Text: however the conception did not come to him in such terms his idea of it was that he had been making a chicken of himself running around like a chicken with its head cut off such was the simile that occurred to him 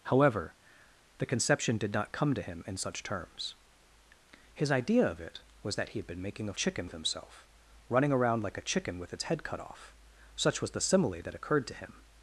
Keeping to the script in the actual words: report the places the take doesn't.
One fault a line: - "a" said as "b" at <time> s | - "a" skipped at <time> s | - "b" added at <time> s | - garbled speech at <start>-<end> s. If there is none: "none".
none